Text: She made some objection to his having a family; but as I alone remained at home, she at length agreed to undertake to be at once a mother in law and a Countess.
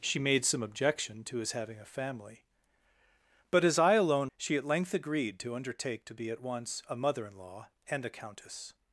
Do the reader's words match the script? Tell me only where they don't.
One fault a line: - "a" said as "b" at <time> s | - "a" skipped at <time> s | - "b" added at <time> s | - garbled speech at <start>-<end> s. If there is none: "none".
- "remained at home" skipped at 4.3 s